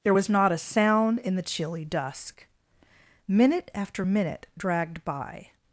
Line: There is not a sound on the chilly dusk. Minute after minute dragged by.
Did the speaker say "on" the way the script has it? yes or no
no